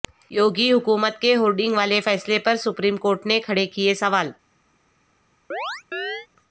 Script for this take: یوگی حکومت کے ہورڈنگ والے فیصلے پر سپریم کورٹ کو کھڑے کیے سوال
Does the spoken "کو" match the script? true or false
false